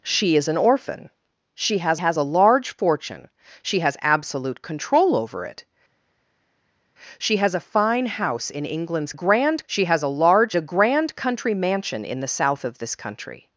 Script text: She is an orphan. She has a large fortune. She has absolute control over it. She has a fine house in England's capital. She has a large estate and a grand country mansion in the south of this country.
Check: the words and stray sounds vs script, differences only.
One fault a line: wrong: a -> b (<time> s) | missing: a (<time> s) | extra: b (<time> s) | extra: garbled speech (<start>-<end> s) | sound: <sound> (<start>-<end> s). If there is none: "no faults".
extra: has (2.0 s)
wrong: capital -> grand (9.1 s)
missing: estate and (10.5 s)